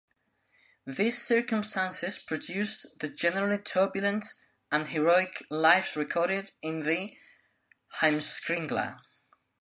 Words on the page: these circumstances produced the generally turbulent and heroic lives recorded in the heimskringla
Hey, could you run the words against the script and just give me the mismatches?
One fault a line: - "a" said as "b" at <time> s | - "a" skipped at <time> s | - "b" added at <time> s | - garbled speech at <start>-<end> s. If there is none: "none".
none